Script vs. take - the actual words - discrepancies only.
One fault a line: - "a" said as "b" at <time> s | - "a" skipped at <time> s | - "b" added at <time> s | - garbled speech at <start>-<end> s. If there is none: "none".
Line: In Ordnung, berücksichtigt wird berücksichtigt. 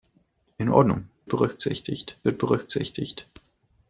none